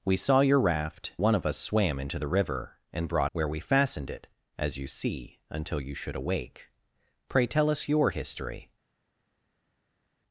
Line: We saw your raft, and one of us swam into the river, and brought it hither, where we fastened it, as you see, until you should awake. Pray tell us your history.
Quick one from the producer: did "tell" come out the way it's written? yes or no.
yes